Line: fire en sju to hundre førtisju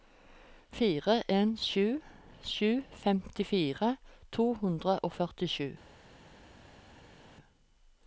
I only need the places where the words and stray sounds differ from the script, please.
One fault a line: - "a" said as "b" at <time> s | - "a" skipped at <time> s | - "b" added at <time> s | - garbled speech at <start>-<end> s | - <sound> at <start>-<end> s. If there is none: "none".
- "sju femtifire" added at 2.5 s
- "og" added at 5.0 s